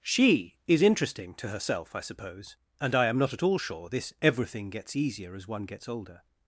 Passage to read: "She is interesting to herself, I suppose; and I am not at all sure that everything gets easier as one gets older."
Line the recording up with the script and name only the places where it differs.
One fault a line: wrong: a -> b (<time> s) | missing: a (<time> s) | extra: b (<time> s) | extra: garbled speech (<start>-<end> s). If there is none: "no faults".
wrong: that -> this (3.9 s)